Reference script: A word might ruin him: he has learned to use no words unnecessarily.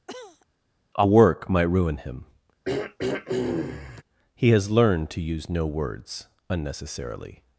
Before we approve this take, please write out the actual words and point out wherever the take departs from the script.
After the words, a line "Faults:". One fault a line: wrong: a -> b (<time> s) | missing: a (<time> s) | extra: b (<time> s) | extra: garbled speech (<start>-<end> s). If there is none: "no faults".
A work might ruin him: he has learned to use no words unnecessarily.
Faults:
wrong: word -> work (1.1 s)